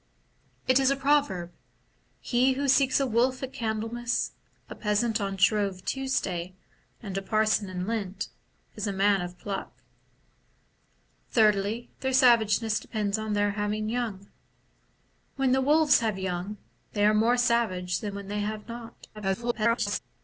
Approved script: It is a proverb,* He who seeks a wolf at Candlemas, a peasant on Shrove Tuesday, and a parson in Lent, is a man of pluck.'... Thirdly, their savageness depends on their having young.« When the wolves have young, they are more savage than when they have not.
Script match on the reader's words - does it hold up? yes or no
no